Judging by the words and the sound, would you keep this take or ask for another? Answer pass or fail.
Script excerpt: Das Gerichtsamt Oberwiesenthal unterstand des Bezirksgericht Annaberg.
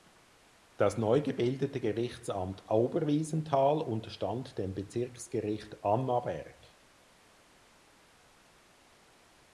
fail